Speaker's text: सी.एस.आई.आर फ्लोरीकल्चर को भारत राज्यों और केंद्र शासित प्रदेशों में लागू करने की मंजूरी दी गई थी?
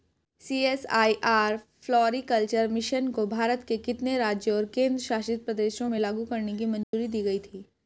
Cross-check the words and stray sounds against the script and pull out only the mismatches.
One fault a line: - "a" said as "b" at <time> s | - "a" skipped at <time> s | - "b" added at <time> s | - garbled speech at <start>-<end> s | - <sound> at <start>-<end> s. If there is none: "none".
- "मिशन" added at 2.7 s
- "के कितने" added at 3.6 s
- dropout at 6.8-6.9 s